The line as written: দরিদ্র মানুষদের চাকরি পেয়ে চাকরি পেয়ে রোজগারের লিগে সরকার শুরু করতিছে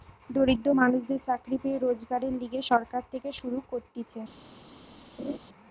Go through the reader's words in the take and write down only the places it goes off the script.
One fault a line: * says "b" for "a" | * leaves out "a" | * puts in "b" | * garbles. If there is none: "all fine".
* leaves out "চাকরি পেয়ে"
* puts in "থেকে"